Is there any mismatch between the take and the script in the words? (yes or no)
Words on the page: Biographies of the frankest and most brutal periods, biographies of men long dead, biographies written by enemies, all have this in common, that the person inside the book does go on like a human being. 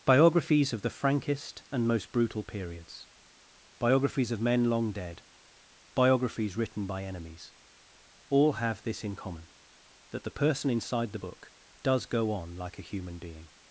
no